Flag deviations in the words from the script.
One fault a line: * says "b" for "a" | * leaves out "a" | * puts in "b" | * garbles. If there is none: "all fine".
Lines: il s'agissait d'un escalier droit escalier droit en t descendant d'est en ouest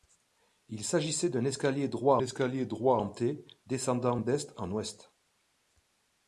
all fine